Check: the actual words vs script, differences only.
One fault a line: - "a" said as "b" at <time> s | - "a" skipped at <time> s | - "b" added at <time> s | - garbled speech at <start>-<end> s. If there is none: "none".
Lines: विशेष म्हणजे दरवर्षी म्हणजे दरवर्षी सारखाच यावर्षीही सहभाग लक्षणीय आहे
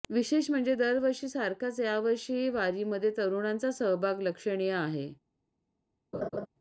- "म्हणजे दरवर्षी सारखाच यावर्षीही" said as "सारखाच यावर्षीही वारीमध्ये तरुणांचा" at 1.3 s